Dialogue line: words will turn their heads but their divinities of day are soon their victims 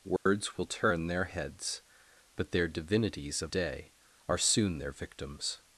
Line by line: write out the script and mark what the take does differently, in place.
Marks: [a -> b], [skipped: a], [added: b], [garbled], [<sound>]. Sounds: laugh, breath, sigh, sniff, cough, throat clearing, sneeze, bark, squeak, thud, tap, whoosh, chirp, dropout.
words [dropout] will turn their heads but their divinities of day are soon their victims